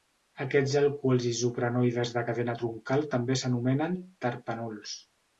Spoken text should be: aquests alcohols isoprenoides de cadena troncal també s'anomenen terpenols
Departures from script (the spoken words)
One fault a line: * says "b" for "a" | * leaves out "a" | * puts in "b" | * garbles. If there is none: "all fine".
all fine